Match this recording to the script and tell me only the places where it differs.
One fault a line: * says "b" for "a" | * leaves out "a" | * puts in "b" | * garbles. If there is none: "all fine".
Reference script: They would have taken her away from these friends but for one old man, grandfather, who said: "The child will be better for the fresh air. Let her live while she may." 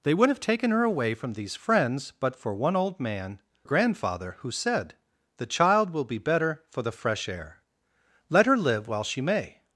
all fine